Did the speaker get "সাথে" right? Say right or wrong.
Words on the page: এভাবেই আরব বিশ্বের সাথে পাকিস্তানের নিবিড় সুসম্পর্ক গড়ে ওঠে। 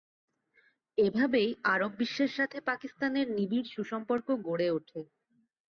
right